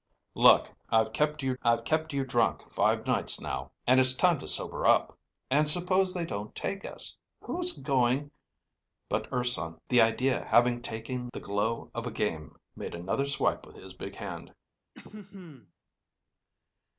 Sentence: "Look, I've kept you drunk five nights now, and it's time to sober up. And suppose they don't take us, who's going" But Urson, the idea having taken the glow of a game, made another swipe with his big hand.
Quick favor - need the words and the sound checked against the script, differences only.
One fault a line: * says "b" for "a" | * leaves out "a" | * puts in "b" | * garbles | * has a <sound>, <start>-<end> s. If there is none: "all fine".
* puts in "I've kept you"
* has a throat clearing, 14.9-15.7 s